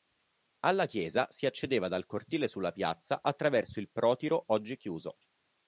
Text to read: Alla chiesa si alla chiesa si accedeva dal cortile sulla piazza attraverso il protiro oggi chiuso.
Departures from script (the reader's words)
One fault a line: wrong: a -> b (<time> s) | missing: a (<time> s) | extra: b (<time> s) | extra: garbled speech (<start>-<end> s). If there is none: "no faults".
missing: alla chiesa si (1.4 s)